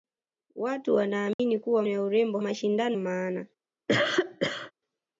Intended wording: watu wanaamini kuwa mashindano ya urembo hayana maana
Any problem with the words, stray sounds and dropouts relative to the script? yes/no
yes